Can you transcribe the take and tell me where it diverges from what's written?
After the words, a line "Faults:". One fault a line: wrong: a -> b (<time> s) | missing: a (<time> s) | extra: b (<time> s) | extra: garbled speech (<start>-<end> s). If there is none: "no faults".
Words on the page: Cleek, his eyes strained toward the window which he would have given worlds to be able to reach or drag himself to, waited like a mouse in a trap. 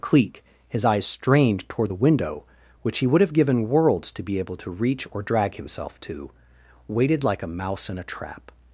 Cleek, his eyes strained toward the window which he would have given worlds to be able to reach or drag himself to, waited like a mouse in a trap.
Faults:
no faults